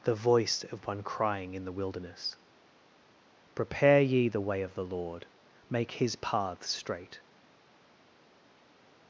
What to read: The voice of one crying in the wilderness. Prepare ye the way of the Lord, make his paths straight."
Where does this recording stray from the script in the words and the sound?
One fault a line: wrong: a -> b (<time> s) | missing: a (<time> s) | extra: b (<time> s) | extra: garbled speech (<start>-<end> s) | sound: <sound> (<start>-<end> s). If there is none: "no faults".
no faults